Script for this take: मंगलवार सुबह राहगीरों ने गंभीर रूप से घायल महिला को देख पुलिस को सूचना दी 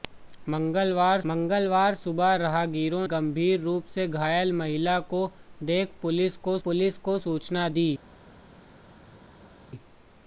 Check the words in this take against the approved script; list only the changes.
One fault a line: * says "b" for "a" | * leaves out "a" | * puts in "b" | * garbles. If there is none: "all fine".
* puts in "मंगलवार"
* leaves out "ने"
* puts in "पुलिस को"